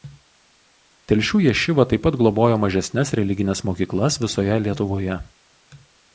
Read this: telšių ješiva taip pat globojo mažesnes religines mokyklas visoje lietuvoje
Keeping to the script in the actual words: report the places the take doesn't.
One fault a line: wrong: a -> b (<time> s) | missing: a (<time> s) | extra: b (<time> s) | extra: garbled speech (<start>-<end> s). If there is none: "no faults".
no faults